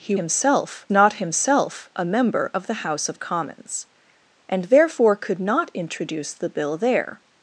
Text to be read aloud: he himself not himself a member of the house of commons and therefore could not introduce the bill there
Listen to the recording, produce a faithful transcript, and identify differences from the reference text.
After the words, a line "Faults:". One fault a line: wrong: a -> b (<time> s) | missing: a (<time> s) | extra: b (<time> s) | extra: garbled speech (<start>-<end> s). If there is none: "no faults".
he himself not himself a member of the house of commons and therefore could not introduce the bill there
Faults:
no faults